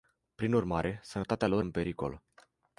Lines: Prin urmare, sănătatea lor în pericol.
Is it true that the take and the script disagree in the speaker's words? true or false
false